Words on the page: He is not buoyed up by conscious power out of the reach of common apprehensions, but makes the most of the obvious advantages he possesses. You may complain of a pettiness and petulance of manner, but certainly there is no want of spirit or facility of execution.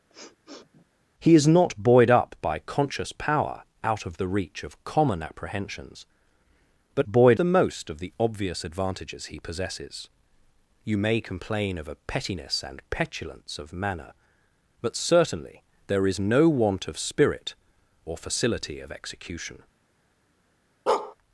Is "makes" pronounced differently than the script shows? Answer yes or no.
yes